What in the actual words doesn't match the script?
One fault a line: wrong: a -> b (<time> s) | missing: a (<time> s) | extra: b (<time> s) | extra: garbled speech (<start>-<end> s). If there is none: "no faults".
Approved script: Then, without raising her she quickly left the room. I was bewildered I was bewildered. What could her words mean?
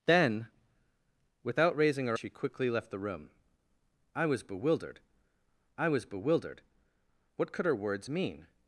no faults